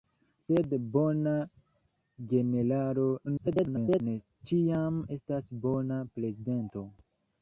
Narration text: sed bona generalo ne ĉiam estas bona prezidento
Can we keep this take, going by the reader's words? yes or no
no